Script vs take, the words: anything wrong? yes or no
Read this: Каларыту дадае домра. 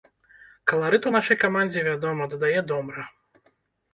yes